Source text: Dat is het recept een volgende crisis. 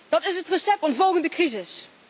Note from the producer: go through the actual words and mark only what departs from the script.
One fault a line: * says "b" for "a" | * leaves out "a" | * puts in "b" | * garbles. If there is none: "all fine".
all fine